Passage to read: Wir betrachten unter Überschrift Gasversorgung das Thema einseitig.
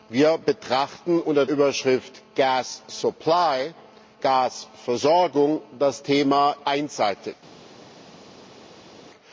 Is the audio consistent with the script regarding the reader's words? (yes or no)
yes